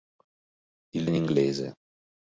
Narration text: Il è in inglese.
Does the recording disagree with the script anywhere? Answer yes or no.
no